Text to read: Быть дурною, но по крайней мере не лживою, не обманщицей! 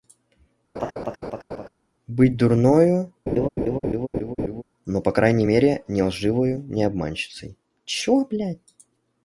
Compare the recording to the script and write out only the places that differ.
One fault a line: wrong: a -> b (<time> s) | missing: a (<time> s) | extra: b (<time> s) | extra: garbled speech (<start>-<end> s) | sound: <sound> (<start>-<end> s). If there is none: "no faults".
sound: laugh (0.7-1.7 s)
sound: laugh (3.3-4.6 s)